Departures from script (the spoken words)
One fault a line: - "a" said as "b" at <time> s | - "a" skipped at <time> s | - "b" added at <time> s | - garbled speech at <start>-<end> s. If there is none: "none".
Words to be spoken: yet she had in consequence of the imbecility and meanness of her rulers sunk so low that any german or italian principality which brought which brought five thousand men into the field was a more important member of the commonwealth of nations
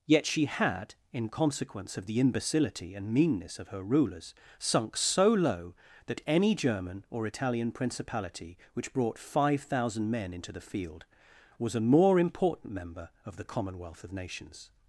- "which brought" skipped at 9.2 s